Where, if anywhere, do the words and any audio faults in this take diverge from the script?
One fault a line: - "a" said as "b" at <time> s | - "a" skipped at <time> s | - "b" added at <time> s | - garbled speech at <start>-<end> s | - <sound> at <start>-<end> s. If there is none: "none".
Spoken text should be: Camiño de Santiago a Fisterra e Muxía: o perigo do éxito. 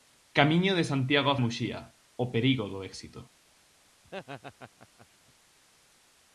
- "Fisterra" skipped at 1.4 s
- laugh at 4.0-5.1 s